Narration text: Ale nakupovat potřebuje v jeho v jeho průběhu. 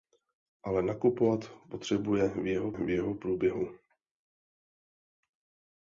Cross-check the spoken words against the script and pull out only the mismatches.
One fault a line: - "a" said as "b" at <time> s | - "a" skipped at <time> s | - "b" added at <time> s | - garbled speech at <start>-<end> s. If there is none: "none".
none